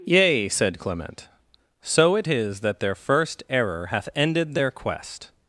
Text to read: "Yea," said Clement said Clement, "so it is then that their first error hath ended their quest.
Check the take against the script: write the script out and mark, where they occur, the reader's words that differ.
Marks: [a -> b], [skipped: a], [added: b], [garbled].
"Yea," said Clement [skipped: said Clement,] "so it is [skipped: then] that their first error hath ended their quest.